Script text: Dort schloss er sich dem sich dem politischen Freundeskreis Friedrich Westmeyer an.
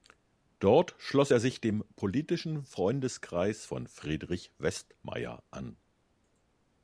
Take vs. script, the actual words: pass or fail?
fail